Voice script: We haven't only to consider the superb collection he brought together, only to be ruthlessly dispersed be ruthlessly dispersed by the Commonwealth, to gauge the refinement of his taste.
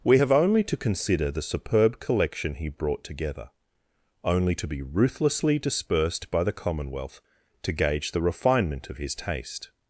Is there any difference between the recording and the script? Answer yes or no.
yes